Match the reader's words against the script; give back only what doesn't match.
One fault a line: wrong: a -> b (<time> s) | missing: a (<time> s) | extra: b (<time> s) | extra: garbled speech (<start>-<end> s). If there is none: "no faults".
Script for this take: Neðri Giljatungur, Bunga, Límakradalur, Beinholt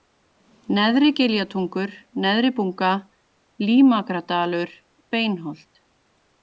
extra: Neðri (2.3 s)